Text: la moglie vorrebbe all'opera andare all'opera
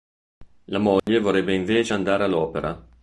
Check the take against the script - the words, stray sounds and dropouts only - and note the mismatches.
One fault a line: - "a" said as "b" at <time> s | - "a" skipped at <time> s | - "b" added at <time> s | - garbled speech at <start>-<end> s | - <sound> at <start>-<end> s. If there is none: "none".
- dropout at 1.0-1.1 s
- "all'opera" said as "invece" at 1.5 s